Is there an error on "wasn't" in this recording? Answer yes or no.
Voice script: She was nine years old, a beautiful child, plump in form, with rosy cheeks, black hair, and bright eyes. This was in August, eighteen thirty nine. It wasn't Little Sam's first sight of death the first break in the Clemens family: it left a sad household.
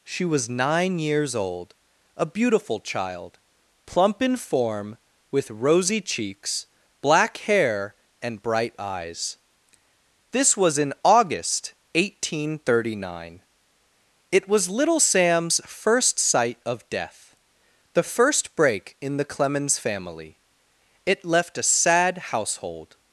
yes